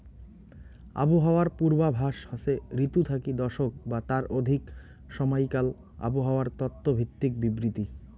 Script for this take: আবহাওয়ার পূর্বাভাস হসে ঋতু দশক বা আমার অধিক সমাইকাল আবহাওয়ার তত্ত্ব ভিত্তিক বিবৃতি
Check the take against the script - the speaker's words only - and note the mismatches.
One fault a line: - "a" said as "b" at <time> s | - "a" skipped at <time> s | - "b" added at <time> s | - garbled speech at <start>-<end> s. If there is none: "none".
- "থাকি" added at 3.0 s
- "আমার" said as "তার" at 4.1 s